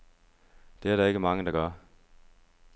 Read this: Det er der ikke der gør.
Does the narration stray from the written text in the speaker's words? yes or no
yes